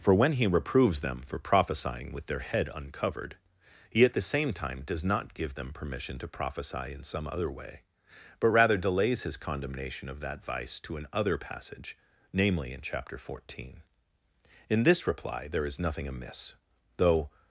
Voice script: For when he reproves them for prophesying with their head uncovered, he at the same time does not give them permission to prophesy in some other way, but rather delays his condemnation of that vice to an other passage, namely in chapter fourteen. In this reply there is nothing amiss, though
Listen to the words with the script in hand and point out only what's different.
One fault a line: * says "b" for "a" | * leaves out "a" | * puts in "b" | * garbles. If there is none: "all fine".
all fine